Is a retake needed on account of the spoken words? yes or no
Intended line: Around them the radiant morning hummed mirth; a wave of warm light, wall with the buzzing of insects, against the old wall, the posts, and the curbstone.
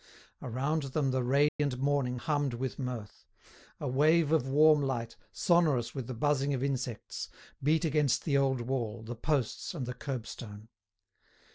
yes